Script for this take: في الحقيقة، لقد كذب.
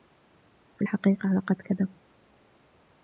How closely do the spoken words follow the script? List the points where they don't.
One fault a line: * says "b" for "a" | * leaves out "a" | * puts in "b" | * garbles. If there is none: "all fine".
all fine